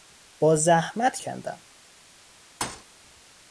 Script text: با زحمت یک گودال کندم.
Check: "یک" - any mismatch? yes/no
yes